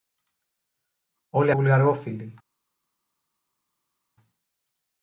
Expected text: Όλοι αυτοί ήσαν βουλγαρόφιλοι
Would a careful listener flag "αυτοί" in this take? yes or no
yes